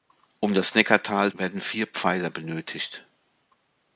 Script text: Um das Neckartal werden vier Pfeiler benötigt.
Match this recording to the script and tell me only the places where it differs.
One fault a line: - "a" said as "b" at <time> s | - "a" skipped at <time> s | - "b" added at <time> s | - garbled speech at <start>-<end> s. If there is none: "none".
none